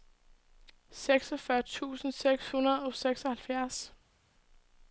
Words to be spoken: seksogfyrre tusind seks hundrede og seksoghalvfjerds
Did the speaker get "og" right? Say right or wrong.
right